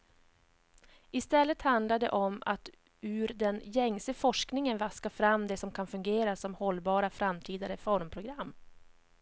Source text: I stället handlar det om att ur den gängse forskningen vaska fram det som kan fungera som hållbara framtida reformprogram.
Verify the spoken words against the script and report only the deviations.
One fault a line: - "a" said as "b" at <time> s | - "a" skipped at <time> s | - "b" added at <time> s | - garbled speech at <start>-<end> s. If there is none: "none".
none